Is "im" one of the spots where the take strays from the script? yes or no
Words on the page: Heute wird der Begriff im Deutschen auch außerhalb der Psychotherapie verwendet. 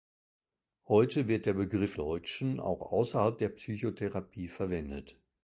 yes